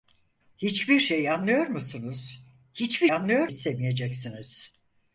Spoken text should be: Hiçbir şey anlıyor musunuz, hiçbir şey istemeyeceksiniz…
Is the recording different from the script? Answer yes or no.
yes